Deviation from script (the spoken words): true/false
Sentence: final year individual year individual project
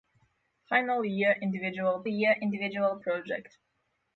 false